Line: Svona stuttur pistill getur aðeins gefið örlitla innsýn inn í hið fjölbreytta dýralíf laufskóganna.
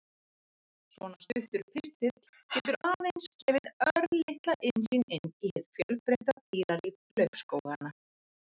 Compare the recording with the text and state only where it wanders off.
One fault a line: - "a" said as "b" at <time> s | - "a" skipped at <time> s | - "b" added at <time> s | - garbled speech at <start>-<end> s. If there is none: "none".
none